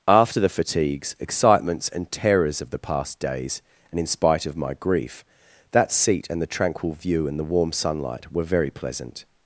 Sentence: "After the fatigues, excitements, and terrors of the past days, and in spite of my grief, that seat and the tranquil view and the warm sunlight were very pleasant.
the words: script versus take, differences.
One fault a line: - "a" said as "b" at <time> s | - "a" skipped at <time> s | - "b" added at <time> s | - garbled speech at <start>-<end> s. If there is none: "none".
none